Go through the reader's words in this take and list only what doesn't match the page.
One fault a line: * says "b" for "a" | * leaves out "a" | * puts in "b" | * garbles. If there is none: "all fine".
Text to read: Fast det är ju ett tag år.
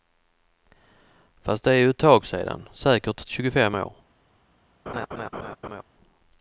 * puts in "sedan säkert tjugofem"